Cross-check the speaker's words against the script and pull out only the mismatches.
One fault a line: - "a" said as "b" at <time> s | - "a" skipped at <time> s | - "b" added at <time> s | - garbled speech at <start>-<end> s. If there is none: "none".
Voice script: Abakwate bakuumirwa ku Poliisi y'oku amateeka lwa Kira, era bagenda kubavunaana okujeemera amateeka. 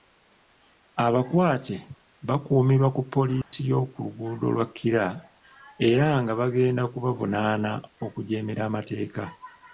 - "amateeka" said as "luguudo" at 4.0 s
- "nga" added at 6.2 s